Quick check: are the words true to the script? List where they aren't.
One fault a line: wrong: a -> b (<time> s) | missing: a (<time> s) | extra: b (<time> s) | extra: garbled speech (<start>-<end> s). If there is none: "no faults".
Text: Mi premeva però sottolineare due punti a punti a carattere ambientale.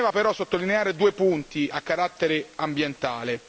missing: punti a (1.8 s)